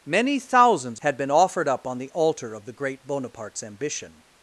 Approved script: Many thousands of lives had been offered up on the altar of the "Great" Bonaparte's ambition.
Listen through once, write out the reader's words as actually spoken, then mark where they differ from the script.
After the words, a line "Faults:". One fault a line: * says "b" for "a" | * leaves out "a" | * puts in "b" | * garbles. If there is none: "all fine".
Many thousands had been offered up on the altar of the "Great" Bonaparte's ambition.
Faults:
* leaves out "of lives"